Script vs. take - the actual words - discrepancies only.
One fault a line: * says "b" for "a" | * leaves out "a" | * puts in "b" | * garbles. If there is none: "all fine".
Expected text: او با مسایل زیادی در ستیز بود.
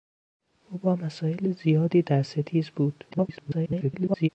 * garbles